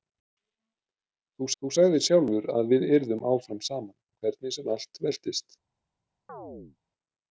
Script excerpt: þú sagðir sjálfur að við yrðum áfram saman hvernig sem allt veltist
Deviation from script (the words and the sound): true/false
true